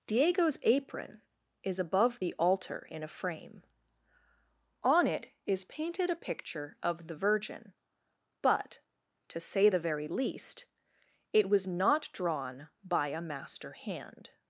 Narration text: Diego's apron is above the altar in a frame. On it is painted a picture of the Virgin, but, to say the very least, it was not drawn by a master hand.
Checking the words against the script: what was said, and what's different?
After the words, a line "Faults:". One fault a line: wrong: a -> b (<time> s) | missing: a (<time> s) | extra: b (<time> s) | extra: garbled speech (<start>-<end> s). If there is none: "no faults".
Diego's apron is above the altar in a frame. On it is painted a picture of the Virgin, but, to say the very least, it was not drawn by a master hand.
Faults:
no faults